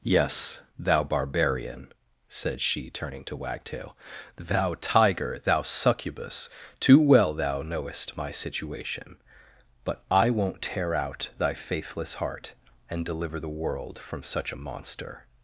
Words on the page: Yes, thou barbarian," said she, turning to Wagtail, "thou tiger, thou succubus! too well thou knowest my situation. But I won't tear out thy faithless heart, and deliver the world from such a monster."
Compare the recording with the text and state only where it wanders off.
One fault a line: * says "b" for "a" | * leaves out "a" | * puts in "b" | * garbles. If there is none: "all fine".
all fine